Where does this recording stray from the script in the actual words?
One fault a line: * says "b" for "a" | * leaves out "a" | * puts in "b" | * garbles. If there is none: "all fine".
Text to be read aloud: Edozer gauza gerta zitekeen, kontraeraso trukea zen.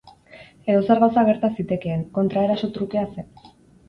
all fine